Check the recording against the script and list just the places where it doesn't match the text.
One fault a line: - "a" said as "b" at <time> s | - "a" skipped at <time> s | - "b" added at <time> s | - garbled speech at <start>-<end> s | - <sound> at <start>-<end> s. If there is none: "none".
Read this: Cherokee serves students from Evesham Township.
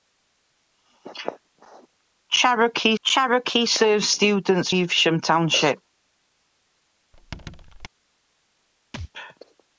- "cherokee" added at 3.0 s
- "from" skipped at 4.7 s
- squeak at 7.1-7.9 s
- thud at 8.9-9.1 s